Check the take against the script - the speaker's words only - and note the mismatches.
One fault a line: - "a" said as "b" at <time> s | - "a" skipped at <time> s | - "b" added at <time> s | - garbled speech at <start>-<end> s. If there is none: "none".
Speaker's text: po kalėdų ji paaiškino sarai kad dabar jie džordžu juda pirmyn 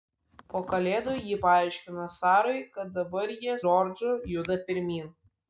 none